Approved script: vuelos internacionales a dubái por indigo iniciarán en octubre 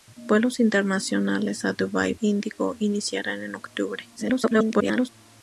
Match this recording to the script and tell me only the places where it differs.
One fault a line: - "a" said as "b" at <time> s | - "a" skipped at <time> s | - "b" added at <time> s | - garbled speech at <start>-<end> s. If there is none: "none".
- "por" skipped at 2.1 s
- garbled speech at 4.2-5.1 s